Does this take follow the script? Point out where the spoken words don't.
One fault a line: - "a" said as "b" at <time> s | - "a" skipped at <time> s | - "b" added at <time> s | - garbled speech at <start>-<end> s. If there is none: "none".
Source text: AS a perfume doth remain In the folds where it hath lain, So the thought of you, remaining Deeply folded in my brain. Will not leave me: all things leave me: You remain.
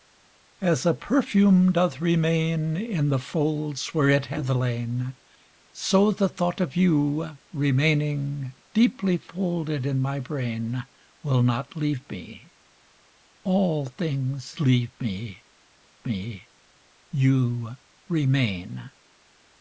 - "me" added at 16.0 s